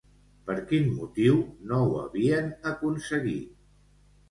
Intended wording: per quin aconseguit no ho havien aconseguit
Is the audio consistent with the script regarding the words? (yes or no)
no